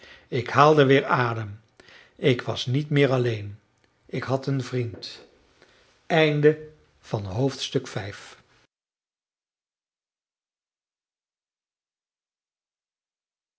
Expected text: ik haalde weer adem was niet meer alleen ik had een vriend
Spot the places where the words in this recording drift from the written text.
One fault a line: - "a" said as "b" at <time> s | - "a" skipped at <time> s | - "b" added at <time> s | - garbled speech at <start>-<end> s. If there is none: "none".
- "ik" added at 2.1 s